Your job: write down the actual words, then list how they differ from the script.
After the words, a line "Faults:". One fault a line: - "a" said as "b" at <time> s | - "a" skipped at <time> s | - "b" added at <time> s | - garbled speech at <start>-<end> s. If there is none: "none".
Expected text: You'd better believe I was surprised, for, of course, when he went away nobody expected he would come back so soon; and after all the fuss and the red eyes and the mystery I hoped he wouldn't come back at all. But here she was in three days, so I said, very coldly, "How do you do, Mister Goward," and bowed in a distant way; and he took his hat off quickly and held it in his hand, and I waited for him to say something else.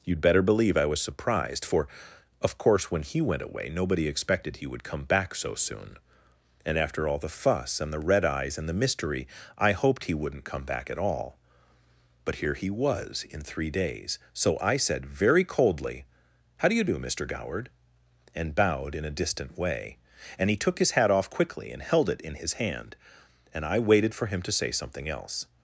You'd better believe I was surprised, for, of course, when he went away nobody expected he would come back so soon; and after all the fuss and the red eyes and the mystery I hoped he wouldn't come back at all. But here he was in three days, so I said, very coldly, "How do you do, Mister Goward," and bowed in a distant way; and he took his hat off quickly and held it in his hand, and I waited for him to say something else.
Faults:
- "she" said as "he" at 12.6 s